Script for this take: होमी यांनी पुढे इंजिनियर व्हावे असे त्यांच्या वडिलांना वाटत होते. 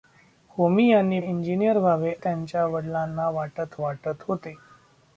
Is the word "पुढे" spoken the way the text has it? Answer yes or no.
no